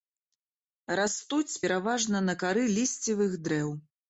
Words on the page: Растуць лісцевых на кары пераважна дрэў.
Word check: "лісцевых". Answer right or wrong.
wrong